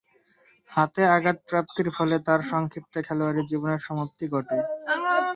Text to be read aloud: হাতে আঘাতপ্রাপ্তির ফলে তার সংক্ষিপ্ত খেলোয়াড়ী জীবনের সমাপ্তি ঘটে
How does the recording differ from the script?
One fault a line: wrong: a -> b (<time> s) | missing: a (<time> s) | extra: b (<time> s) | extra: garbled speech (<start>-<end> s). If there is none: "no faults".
no faults